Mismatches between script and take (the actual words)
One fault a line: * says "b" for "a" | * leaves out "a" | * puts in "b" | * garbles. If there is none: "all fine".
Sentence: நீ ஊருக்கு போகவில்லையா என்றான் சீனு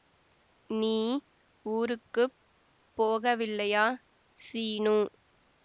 * leaves out "என்றான்"